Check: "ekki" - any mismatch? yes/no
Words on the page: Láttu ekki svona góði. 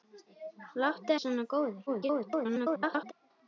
yes